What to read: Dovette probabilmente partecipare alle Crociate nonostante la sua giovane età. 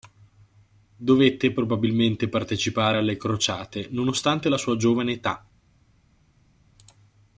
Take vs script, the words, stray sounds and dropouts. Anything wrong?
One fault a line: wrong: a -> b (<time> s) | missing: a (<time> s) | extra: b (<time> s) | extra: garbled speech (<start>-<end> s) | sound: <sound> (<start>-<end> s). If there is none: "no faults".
no faults